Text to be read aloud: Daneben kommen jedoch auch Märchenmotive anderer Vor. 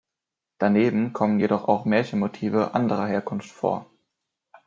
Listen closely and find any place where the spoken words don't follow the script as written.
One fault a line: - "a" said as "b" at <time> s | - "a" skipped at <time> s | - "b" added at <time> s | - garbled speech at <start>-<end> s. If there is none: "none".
- "Herkunft" added at 3.1 s